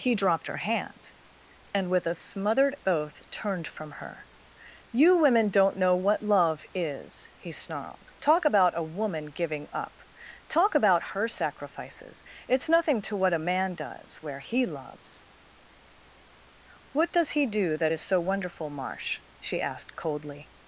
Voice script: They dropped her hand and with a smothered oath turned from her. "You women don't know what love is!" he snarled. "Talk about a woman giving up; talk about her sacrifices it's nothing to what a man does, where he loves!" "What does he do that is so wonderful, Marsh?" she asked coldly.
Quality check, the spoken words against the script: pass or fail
fail